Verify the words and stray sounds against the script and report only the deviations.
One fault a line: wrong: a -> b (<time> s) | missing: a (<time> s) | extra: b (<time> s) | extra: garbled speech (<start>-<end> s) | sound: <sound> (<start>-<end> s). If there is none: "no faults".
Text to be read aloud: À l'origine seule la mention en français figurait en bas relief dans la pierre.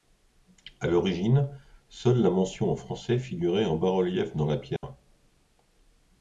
sound: dropout (4.8-4.8 s)